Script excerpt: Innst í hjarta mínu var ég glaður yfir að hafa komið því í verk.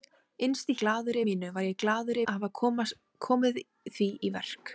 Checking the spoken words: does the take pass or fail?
fail